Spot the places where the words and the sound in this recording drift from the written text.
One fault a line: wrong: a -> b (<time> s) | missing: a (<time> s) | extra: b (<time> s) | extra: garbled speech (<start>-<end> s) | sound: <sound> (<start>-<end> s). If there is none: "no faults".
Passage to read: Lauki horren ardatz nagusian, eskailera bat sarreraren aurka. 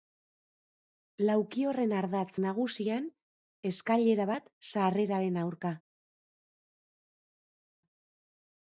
no faults